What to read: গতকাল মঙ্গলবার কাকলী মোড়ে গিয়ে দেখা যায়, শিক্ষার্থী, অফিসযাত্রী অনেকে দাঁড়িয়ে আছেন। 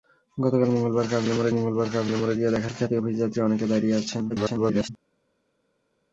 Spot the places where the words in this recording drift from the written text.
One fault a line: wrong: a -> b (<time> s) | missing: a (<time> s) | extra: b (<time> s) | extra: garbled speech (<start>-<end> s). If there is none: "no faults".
extra: মঙ্গলবার কাকলী মোড়ে (1.5 s)
missing: যায় (2.7 s)
extra: garbled speech (4.3-4.9 s)